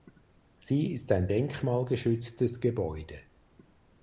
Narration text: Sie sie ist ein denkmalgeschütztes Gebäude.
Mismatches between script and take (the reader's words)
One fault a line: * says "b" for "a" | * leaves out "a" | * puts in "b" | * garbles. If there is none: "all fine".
* leaves out "sie"